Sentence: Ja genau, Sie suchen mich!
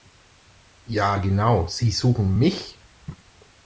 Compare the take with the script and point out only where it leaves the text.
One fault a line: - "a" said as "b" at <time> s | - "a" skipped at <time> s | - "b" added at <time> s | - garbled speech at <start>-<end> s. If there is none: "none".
none